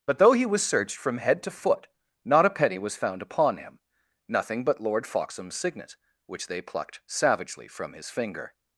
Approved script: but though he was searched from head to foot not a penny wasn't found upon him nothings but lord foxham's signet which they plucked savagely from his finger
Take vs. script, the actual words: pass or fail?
fail